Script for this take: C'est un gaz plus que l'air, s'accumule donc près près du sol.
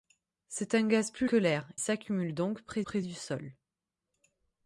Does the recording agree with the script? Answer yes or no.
yes